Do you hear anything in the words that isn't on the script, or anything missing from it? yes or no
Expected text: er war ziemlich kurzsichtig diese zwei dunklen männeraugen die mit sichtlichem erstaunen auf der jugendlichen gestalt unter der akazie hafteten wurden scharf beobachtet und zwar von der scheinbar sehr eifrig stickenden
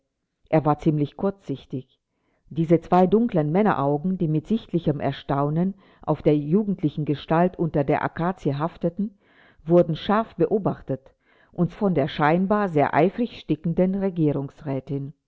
yes